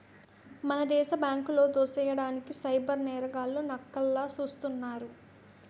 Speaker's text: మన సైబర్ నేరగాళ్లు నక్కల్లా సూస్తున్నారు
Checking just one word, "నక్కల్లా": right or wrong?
right